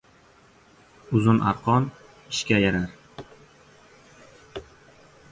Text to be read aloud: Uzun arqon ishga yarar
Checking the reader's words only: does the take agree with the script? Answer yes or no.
yes